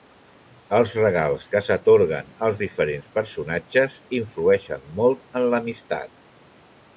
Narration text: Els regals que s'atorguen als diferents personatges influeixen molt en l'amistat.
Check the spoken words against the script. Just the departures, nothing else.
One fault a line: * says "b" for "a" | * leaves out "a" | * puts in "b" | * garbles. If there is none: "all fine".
all fine